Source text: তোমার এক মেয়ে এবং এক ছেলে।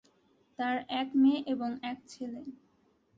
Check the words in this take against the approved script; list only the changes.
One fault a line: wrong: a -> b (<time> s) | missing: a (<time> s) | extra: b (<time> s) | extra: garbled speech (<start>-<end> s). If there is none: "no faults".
wrong: তোমার -> তার (0.6 s)